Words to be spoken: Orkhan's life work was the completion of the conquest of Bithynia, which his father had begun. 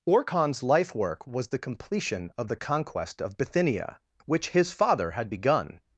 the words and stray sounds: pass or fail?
pass